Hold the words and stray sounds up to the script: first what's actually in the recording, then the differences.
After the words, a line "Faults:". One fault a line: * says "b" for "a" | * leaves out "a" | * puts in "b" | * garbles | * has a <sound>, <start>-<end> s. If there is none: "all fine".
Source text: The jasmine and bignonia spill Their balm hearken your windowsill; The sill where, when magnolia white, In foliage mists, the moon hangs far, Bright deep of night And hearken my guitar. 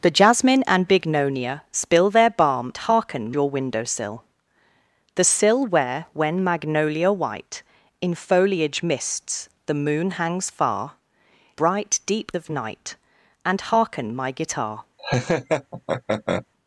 The jasmine and bignonia spill Their balm hearken your windowsill; The sill where, when magnolia white, In foliage mists, the moon hangs far, Bright deep of night And hearken my guitar.
Faults:
* has a laugh, 15.0-16.5 s